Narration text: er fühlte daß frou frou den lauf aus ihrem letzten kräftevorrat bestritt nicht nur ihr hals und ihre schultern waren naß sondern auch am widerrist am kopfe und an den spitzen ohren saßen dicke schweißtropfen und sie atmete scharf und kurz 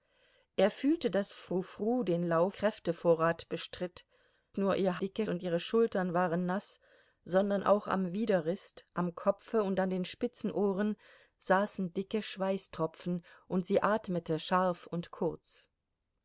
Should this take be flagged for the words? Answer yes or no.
yes